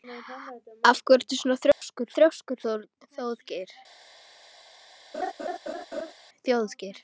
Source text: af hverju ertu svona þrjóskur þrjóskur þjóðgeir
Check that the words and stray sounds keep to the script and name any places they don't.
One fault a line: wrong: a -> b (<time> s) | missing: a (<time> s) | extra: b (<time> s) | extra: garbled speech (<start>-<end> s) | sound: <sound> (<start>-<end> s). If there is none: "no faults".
sound: dropout (1.7-1.8 s)
sound: laugh (5.1-6.1 s)